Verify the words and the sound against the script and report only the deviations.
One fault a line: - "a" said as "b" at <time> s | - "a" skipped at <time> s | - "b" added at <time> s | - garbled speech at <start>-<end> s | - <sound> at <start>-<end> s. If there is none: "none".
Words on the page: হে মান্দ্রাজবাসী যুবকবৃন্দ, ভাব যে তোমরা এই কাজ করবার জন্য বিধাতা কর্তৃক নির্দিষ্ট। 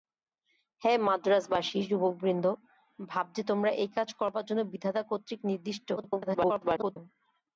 - garbled speech at 6.0-7.0 s